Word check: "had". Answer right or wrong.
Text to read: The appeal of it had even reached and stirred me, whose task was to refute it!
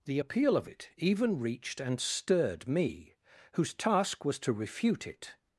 wrong